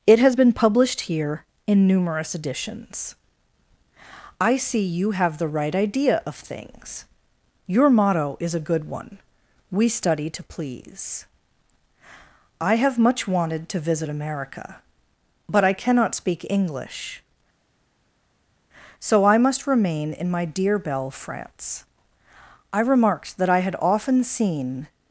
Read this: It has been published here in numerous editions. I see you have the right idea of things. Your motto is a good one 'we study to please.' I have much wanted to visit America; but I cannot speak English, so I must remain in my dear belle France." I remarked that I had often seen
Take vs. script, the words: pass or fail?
pass